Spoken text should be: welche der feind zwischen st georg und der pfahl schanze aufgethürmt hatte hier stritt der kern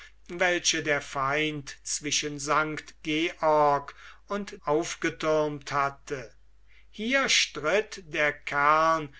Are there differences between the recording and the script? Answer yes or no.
yes